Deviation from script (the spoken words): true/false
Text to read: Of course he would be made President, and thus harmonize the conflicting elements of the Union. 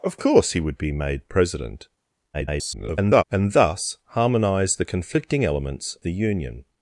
true